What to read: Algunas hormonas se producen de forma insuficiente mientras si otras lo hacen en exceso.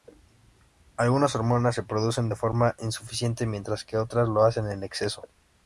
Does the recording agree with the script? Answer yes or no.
no